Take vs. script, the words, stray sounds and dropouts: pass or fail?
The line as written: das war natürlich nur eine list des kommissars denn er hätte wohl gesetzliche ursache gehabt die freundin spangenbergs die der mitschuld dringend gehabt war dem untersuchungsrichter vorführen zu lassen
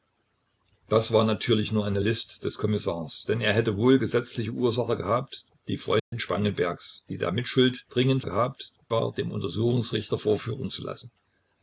fail